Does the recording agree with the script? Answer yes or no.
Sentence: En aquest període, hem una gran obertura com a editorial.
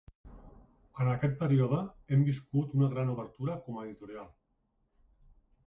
no